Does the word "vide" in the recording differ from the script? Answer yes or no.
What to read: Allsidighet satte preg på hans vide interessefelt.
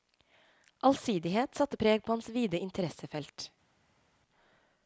no